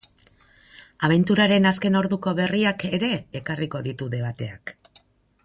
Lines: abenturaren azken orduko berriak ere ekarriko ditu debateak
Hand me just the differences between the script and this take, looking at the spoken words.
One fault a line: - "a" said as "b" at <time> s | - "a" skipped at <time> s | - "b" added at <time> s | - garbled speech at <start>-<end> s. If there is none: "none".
none